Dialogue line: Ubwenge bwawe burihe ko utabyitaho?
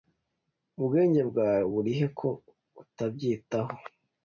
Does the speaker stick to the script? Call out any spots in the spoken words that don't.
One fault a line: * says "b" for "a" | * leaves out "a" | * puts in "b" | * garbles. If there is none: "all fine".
all fine